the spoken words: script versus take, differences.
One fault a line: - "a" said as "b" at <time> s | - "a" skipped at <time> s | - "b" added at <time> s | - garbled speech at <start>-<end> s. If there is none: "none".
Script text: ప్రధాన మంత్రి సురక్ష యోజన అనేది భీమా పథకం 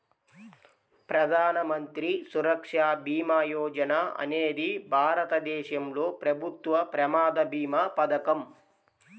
- "భీమా" added at 3.0 s
- "భారతదేశంలో ప్రభుత్వ ప్రమాద" added at 4.9 s